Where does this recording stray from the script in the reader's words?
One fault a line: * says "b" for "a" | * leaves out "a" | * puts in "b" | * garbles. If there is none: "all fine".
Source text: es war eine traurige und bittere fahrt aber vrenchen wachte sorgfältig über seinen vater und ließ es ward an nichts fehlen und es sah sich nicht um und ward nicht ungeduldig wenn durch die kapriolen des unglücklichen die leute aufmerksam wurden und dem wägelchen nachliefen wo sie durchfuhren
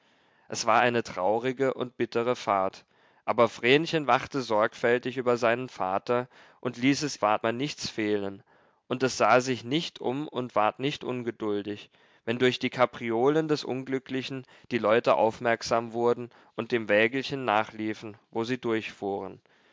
all fine